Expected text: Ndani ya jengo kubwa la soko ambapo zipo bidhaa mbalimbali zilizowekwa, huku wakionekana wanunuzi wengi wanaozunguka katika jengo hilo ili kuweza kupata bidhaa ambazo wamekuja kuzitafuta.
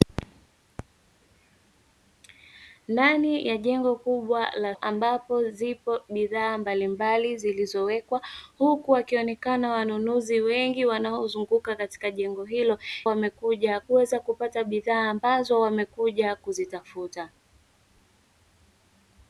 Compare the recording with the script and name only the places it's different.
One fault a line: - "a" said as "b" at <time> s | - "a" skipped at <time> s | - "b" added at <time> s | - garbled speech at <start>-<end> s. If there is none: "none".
- "soko" skipped at 4.8 s
- "ili" said as "wamekuja" at 13.0 s